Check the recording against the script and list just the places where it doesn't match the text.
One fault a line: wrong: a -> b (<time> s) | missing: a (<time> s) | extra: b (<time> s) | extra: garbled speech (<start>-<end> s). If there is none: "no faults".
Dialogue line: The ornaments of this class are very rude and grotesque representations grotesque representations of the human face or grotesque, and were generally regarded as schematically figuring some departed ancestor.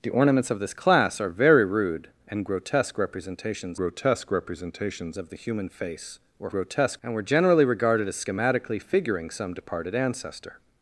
no faults